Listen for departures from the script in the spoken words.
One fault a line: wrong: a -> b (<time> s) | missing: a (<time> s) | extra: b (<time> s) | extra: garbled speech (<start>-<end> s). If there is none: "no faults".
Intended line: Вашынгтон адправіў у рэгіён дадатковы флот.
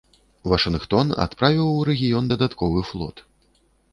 no faults